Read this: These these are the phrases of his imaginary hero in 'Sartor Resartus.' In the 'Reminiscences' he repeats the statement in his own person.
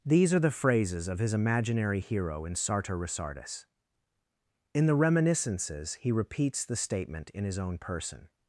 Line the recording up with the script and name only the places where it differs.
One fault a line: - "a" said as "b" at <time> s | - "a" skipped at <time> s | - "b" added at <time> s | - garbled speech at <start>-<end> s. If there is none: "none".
- "these" skipped at 0.3 s